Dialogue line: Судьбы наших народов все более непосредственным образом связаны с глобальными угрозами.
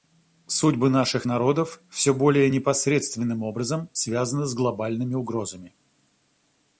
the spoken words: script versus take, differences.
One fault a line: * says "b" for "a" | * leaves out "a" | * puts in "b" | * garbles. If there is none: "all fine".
all fine